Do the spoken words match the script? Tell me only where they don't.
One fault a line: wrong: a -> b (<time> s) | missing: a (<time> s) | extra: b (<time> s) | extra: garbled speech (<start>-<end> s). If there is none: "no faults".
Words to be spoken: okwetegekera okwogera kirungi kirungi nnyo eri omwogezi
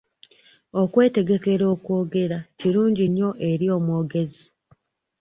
missing: kirungi (3.1 s)